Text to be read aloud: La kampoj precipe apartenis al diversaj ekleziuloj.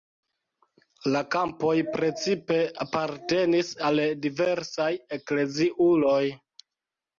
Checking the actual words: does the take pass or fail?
pass